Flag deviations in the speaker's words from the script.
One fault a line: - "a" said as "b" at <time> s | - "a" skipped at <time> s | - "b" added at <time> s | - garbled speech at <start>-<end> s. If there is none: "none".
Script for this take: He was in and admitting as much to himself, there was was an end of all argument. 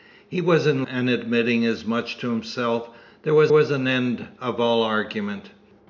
none